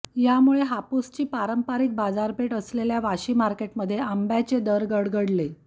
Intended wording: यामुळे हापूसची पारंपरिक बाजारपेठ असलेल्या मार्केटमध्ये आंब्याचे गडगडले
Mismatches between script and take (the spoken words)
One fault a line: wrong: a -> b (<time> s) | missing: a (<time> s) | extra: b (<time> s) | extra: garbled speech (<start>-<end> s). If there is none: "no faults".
extra: वाशी (3.0 s)
extra: दर (4.6 s)